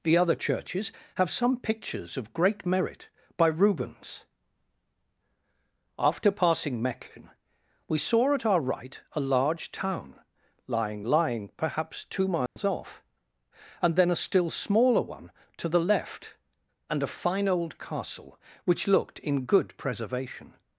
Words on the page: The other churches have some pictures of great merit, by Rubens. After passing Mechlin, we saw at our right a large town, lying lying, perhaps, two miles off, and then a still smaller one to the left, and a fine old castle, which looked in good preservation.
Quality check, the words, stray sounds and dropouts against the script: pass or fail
fail